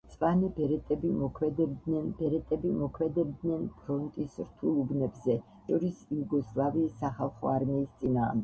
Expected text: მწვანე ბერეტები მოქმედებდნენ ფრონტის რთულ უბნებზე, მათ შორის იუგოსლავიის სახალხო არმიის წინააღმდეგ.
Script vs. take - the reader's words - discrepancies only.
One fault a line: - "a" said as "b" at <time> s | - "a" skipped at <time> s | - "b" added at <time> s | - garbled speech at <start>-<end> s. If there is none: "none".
- "ბერეტები მოქმედებდნენ" added at 2.2 s
- "მათ" skipped at 5.4 s